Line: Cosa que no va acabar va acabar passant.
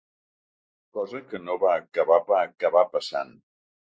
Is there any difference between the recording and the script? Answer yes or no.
no